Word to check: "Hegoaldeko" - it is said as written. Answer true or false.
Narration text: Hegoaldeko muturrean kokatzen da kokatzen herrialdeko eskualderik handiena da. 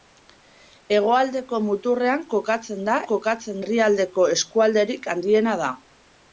true